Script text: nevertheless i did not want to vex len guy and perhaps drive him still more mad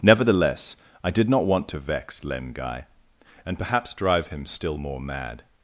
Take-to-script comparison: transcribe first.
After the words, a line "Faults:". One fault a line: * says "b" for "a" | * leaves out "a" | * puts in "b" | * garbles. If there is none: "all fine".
nevertheless i did not want to vex len guy and perhaps drive him still more mad
Faults:
all fine